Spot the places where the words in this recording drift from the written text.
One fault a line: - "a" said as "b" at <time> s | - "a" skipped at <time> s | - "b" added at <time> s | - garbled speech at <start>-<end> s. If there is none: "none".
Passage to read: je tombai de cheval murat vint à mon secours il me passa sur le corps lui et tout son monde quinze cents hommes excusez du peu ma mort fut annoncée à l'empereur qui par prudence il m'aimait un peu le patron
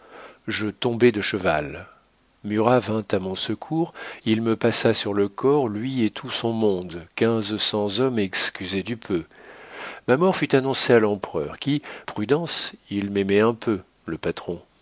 - "par" skipped at 11.8 s